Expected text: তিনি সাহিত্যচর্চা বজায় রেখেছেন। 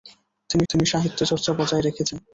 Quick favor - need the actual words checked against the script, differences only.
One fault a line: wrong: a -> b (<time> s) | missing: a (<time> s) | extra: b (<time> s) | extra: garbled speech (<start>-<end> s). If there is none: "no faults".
extra: তিনি (0.7 s)